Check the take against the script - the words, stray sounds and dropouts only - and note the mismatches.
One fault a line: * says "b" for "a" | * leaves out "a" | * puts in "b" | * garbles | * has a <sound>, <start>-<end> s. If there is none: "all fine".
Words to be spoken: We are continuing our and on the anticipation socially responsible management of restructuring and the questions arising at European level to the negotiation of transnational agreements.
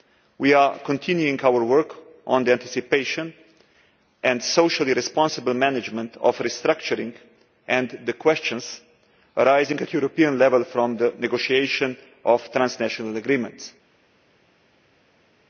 * says "work" for "and"
* puts in "and"
* says "from" for "to"